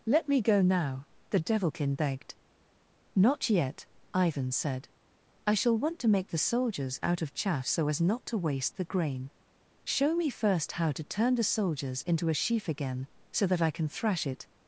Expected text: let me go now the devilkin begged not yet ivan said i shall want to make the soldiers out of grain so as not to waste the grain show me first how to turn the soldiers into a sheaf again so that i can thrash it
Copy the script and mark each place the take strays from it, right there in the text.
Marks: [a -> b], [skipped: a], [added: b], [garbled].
let me go now the devilkin begged not yet ivan said i shall want to make the soldiers out of [grain -> chaff] so as not to waste the grain show me first how to turn the soldiers into a sheaf again so that i can thrash it